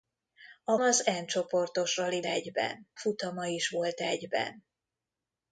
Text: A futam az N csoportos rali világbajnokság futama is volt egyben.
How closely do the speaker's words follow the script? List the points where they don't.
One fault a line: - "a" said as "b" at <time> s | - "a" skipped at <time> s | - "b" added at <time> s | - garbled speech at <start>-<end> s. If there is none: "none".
- "futam" skipped at 0.8 s
- "világbajnokság" said as "egyben" at 2.2 s